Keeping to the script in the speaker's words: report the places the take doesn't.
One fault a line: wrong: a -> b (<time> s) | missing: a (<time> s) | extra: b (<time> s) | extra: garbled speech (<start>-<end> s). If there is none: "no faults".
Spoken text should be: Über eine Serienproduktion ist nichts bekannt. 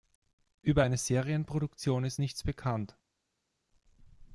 no faults